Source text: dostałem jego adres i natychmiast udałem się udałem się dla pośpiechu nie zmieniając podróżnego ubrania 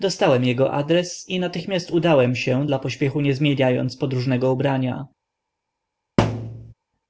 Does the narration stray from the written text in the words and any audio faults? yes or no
yes